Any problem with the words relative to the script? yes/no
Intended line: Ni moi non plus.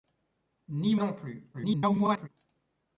yes